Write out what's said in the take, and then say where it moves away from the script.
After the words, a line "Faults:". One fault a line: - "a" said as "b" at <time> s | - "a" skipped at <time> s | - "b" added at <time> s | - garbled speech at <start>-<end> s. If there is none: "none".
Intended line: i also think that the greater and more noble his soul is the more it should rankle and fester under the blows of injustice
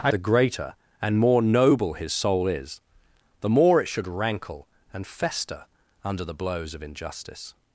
i the greater and more noble his soul is the more it should rankle and fester under the blows of injustice
Faults:
- "also think that" skipped at 0.1 s